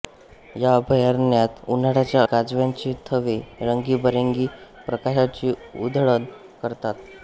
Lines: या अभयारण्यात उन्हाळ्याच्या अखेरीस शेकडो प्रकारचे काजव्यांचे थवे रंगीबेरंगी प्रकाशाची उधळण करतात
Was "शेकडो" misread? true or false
true